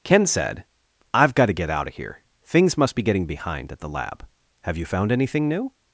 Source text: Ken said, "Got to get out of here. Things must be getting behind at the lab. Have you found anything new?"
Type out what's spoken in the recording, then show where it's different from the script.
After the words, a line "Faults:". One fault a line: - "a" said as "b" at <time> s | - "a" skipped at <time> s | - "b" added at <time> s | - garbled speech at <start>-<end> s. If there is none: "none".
Ken said, "I've got to get out of here. Things must be getting behind at the lab. Have you found anything new?"
Faults:
- "I've" added at 1.1 s